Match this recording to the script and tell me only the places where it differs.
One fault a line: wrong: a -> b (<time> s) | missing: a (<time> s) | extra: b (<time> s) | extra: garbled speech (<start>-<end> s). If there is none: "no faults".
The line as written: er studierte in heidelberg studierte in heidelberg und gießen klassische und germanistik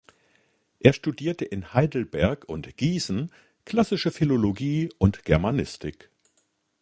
missing: studierte in heidelberg (2.5 s)
extra: philologie (4.1 s)